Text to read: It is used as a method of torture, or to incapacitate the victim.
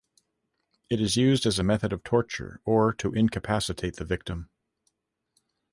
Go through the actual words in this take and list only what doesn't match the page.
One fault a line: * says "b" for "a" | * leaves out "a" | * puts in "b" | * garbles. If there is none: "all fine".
all fine